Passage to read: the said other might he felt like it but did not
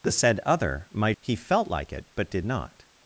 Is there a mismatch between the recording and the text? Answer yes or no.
no